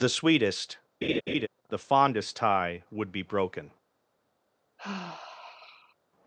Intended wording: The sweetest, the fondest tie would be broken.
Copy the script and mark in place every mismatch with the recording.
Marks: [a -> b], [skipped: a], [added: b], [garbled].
The sweetest, the fondest tie would be broken.